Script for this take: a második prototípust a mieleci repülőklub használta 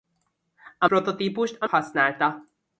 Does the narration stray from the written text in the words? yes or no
yes